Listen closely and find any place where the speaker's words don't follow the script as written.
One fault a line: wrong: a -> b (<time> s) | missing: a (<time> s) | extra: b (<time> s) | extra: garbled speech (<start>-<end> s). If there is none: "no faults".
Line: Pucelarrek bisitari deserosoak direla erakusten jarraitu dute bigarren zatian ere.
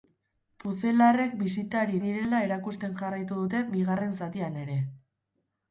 missing: deserosoak (2.0 s)